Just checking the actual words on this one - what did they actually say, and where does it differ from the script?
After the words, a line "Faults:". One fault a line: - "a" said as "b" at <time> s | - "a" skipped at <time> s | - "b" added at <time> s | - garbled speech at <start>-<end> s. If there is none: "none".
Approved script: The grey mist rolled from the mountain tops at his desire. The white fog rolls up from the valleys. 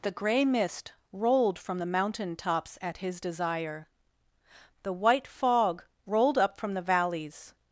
The grey mist rolled from the mountain tops at his desire. The white fog rolled up from the valleys.
Faults:
- "rolls" said as "rolled" at 6.1 s